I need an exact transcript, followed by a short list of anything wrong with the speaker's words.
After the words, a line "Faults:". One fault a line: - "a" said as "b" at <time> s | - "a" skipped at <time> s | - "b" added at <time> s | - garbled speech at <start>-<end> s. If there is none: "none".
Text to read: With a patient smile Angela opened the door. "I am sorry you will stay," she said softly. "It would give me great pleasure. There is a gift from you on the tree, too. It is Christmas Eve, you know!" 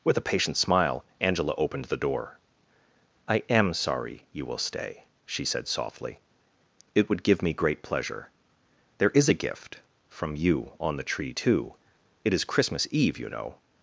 With a patient smile Angela opened the door. "I am sorry you will stay," she said softly. "It would give me great pleasure. There is a gift from you on the tree, too. It is Christmas Eve, you know!"
Faults:
none